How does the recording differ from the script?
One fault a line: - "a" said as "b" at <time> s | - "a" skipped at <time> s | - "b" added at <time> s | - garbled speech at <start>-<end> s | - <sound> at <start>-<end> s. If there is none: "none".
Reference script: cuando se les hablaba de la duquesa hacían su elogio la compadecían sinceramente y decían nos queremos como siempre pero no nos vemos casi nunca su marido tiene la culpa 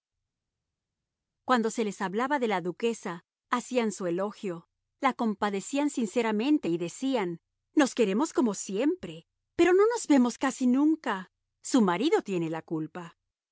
none